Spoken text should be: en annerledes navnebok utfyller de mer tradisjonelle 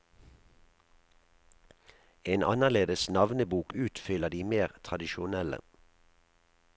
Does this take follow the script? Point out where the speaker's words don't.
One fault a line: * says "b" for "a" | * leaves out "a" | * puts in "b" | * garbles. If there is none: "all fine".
all fine